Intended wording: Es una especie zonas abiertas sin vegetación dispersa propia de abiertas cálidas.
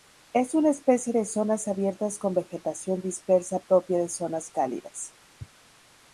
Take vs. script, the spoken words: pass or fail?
fail